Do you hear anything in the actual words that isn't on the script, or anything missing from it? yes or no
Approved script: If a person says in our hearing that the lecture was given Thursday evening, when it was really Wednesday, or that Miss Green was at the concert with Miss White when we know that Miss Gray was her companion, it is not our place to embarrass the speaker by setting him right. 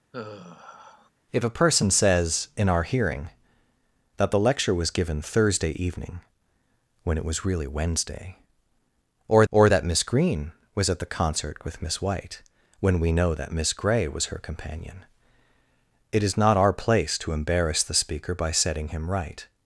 yes